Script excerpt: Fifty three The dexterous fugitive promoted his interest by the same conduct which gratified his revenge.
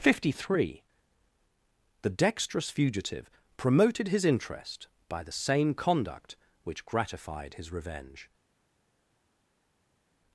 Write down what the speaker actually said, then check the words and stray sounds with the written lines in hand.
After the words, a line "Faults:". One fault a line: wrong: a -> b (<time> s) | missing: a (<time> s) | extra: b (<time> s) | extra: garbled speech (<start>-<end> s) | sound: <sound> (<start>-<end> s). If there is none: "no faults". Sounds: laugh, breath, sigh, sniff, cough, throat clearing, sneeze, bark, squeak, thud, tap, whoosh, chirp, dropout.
Fifty three The dexterous fugitive promoted his interest by the same conduct which gratified his revenge.
Faults:
no faults